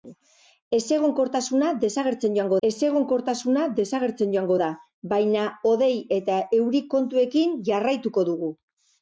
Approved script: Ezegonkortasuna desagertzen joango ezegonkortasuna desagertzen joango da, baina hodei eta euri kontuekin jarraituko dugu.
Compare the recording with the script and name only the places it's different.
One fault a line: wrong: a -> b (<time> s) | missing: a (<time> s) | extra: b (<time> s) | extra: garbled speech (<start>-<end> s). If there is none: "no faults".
no faults